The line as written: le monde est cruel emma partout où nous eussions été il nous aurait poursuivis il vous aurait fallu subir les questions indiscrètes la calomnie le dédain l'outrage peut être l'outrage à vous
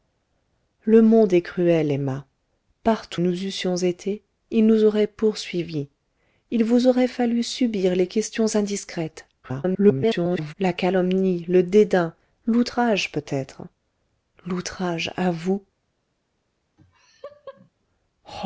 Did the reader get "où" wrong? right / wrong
wrong